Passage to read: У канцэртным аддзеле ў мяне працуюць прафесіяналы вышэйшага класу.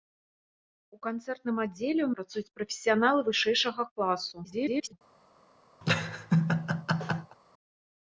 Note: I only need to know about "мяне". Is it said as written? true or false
false